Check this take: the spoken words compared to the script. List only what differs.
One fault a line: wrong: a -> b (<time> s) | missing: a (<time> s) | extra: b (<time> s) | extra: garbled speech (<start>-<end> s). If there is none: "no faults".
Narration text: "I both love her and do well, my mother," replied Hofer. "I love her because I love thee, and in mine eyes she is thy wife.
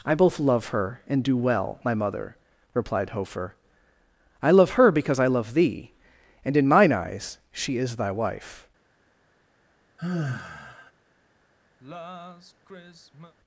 no faults